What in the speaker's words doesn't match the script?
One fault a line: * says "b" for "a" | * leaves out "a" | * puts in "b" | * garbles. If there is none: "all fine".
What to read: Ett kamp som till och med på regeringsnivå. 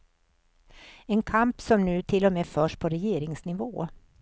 * says "En" for "Ett"
* puts in "nu"
* puts in "förs"